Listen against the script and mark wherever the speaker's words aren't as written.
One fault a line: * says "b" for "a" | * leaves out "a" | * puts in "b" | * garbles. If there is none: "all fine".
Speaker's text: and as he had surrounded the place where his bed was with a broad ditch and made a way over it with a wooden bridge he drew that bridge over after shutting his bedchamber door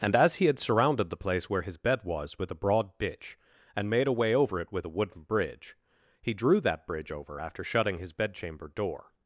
all fine